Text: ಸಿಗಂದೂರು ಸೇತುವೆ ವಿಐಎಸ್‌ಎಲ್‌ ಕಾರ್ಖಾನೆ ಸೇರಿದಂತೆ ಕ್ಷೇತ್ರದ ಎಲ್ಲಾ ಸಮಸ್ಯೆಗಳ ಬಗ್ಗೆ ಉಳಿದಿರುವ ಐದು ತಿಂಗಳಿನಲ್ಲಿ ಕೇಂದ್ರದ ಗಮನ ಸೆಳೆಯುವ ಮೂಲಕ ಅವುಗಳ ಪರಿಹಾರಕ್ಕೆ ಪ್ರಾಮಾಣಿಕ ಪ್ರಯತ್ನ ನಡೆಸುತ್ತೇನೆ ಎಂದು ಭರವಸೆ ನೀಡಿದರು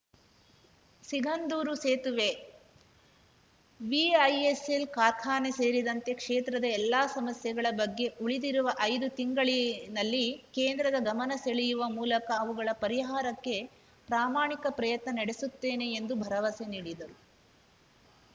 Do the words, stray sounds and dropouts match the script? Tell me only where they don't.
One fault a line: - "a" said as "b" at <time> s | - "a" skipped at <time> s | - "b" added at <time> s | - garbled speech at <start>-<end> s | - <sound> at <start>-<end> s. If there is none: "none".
none